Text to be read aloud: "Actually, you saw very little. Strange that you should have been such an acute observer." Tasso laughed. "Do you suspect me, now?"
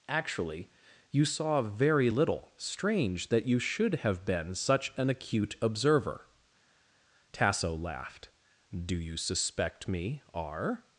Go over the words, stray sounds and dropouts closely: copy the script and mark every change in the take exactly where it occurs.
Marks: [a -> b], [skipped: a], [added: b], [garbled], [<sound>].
"Actually, you saw very little. Strange that you should have been such an acute observer." Tasso laughed. "Do you suspect me, [now?" -> r]